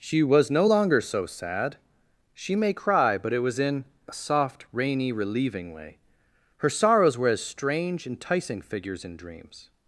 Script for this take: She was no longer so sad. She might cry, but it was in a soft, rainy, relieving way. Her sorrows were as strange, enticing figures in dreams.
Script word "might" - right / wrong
wrong